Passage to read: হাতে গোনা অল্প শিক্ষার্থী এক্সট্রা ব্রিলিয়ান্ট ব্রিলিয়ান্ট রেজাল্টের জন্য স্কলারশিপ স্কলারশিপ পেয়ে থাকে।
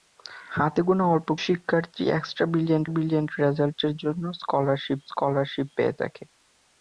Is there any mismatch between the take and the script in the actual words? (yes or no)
no